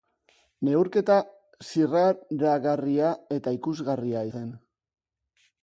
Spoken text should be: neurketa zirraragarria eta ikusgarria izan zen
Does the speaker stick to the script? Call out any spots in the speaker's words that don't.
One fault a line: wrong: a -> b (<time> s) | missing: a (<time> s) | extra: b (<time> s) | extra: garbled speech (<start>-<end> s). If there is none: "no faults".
missing: izan (4.2 s)